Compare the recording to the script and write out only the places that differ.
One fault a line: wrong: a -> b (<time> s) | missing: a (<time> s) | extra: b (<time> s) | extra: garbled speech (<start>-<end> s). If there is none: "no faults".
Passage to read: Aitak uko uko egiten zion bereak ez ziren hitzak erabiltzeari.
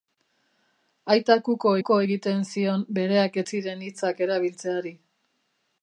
no faults